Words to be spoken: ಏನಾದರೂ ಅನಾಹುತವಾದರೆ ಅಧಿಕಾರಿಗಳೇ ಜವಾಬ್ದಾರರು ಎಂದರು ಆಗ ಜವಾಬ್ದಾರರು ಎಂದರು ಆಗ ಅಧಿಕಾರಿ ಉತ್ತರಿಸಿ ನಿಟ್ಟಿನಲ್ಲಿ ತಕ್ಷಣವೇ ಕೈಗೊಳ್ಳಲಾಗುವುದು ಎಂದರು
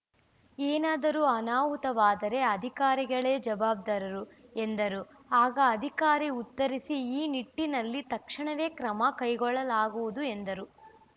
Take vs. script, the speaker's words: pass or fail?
fail